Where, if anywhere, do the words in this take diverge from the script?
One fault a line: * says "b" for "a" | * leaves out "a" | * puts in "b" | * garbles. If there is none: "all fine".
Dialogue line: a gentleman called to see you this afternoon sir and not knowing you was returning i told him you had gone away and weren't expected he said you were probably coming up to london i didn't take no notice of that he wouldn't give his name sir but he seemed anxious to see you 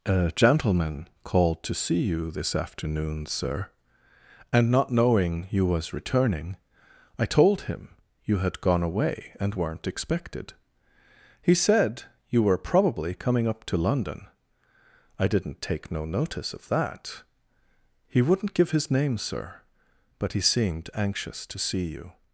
all fine